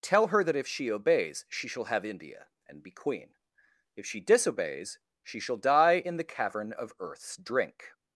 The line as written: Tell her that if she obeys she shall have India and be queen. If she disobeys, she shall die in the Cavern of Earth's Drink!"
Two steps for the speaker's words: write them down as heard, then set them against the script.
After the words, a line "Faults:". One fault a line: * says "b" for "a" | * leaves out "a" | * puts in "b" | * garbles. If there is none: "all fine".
Tell her that if she obeys she shall have India and be queen. If she disobeys, she shall die in the Cavern of Earth's Drink!"
Faults:
all fine